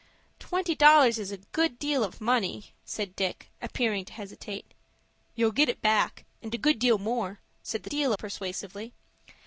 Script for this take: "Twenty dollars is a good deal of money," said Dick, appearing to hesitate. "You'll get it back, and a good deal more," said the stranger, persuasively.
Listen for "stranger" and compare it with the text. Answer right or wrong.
wrong